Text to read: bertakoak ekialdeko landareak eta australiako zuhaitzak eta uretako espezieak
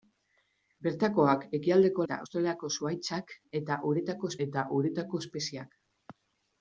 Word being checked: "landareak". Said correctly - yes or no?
no